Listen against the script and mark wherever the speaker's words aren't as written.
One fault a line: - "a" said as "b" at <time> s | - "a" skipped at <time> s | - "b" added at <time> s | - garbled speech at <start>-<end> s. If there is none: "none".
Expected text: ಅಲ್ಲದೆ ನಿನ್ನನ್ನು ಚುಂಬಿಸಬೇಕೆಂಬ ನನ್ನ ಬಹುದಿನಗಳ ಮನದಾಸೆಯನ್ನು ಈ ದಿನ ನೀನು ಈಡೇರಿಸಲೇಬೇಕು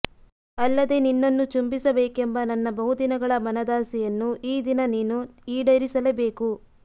none